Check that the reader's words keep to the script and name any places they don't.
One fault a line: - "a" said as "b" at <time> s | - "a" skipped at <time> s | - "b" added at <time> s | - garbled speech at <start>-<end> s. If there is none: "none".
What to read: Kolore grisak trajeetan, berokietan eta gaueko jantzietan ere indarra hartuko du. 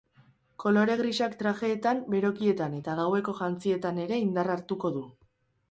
none